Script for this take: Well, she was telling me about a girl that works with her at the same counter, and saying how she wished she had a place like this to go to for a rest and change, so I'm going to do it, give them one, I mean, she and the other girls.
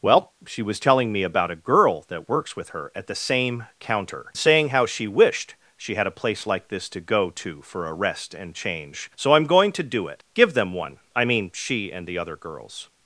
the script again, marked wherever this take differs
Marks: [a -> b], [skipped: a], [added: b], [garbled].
Well, she was telling me about a girl that works with her at the same counter, [skipped: and] saying how she wished she had a place like this to go to for a rest and change, so I'm going to do it, give them one, I mean, she and the other girls.